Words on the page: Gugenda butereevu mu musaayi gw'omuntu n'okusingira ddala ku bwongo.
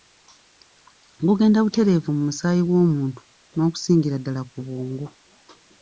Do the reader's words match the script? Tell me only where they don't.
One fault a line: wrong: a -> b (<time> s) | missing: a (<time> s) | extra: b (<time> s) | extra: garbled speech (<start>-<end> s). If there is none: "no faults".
no faults